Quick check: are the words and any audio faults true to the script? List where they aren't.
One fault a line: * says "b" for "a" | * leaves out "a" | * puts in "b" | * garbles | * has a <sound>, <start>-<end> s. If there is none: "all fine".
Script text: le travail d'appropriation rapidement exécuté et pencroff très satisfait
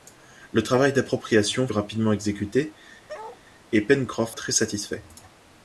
* has a bark, 3.1-3.4 s